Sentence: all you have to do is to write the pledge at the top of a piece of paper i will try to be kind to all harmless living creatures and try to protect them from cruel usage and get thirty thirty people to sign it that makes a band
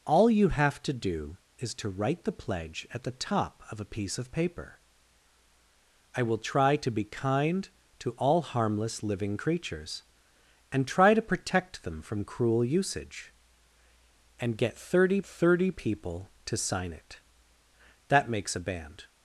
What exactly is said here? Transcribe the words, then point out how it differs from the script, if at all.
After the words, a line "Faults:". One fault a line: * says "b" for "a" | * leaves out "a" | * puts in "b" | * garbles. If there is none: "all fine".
all you have to do is to write the pledge at the top of a piece of paper i will try to be kind to all harmless living creatures and try to protect them from cruel usage and get thirty thirty people to sign it that makes a band
Faults:
all fine